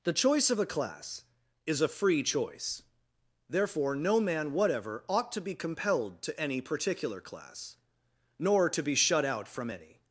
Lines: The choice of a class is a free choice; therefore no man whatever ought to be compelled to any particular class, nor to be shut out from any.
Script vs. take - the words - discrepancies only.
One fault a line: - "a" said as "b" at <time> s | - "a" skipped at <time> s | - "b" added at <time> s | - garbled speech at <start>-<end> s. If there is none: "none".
none